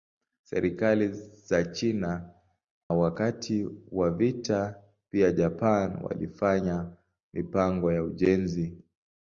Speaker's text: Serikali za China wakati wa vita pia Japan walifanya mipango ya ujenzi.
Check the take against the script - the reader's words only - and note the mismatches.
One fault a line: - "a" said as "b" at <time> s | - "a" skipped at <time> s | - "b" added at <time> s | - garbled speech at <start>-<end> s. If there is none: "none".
none